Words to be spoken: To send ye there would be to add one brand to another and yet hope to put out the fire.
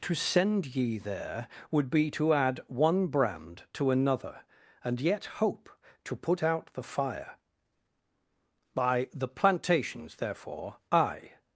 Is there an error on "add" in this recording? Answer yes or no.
no